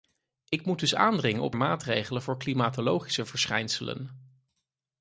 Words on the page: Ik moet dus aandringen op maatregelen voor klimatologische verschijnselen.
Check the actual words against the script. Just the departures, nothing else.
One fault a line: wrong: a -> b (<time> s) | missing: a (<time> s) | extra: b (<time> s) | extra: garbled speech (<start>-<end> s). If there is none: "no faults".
no faults